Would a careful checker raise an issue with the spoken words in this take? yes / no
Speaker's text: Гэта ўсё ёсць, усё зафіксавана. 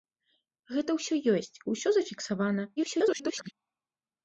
yes